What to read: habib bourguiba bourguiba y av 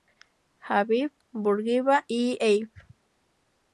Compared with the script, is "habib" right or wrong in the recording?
right